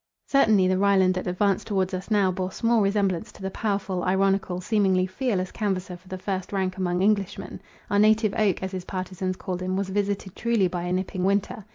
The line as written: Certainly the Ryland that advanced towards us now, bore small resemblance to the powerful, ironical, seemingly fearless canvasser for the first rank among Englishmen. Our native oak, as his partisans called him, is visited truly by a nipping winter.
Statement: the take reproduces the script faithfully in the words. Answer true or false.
false